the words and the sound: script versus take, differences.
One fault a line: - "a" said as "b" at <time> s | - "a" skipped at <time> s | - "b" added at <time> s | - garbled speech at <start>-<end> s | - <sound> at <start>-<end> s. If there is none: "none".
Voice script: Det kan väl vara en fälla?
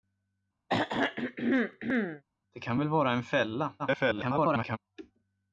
- throat clearing at 0.7-2.2 s
- garbled speech at 3.8-4.8 s